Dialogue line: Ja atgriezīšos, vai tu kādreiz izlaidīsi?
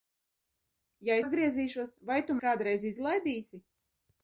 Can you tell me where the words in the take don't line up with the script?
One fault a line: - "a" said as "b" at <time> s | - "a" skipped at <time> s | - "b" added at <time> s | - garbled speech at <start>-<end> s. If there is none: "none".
none